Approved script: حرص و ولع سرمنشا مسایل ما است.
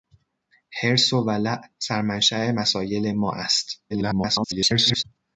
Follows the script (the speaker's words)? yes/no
no